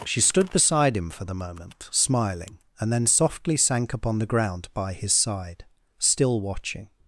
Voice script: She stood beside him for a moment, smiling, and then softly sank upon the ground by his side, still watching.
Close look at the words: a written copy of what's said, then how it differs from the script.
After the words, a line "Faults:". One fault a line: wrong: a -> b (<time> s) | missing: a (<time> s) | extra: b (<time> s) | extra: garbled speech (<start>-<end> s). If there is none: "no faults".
She stood beside him for the moment, smiling, and then softly sank upon the ground by his side, still watching.
Faults:
wrong: a -> the (1.2 s)